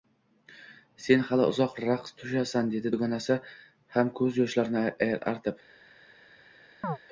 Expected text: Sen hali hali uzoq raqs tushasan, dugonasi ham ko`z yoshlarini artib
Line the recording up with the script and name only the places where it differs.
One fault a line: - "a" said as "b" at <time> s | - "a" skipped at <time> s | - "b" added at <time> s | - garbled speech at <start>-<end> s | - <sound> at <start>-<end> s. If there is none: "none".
- "hali" skipped at 1.4 s
- "dedi" added at 2.8 s
- chirp at 6.8-7.0 s